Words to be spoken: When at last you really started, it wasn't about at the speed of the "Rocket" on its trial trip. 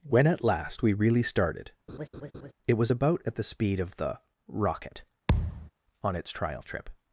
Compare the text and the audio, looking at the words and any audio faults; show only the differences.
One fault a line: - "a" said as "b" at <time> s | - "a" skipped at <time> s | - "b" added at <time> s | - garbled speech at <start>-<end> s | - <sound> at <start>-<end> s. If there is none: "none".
- "you" said as "we" at 0.8 s
- laugh at 1.9-2.5 s
- "wasn't" said as "was" at 2.7 s
- thud at 5.3-5.7 s